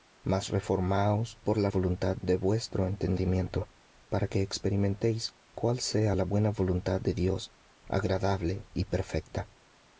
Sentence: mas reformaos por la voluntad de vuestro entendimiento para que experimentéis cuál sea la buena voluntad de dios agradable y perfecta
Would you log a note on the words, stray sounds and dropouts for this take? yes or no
no